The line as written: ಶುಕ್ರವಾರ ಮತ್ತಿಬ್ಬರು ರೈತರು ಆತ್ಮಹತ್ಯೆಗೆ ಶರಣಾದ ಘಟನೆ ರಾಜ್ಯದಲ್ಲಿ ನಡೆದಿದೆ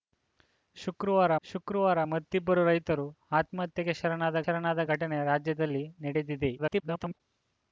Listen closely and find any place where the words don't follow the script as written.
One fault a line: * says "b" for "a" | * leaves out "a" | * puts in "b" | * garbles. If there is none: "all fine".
* puts in "ಶುಕ್ರವಾರ"
* puts in "ಶರಣಾದ"
* garbles